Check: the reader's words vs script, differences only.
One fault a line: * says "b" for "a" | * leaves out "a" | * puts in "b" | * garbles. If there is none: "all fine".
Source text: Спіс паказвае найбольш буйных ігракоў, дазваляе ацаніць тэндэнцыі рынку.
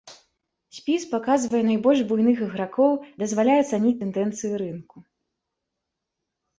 all fine